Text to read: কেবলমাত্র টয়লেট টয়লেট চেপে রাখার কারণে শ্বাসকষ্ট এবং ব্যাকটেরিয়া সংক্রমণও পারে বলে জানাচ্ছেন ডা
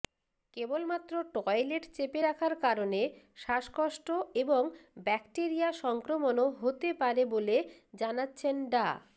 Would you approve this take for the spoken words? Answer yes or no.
no